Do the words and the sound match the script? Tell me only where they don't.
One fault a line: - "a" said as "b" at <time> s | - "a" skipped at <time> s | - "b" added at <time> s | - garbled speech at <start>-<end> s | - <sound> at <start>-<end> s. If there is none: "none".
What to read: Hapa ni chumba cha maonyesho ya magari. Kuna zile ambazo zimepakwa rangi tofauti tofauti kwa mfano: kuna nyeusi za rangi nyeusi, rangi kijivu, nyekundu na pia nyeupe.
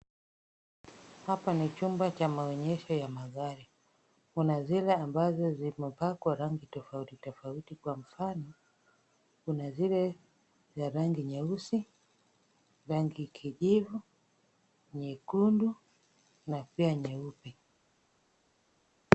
- "nyeusi" said as "zile" at 9.7 s